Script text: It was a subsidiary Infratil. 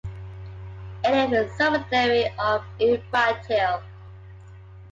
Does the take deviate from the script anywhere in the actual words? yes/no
yes